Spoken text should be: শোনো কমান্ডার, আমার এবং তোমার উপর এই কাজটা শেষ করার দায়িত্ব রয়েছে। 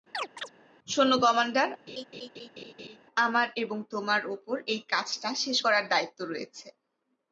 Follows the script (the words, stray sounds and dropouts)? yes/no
no